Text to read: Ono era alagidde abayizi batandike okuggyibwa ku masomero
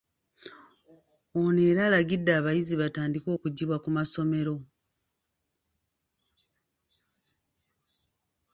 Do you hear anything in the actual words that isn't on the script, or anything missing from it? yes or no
no